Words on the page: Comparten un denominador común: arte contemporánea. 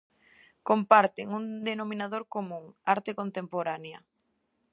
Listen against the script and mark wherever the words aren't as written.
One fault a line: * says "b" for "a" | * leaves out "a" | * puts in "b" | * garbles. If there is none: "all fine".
all fine